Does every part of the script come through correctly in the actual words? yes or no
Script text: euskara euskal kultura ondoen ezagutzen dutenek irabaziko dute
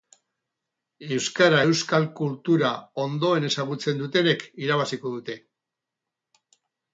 yes